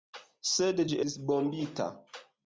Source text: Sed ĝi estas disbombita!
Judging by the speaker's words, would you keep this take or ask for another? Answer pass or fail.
fail